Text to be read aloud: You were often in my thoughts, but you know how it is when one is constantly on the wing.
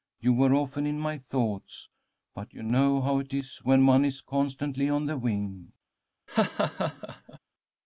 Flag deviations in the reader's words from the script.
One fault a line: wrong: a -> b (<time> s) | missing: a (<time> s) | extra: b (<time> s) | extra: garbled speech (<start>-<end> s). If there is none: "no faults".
no faults